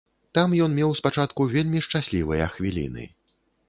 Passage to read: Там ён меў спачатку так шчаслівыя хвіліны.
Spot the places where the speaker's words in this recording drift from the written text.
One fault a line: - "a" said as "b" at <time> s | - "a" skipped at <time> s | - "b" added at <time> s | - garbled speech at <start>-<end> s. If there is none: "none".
- "так" said as "вельмі" at 1.6 s